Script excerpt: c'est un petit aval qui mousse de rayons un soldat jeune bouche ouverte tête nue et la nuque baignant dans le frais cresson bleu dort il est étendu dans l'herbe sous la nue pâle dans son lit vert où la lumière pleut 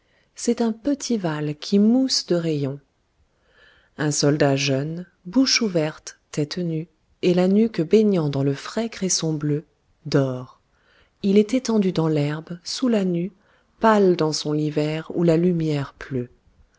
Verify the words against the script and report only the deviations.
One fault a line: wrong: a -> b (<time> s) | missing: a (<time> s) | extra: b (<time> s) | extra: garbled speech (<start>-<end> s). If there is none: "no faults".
no faults